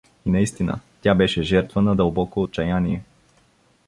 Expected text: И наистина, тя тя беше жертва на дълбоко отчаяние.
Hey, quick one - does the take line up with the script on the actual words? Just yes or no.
no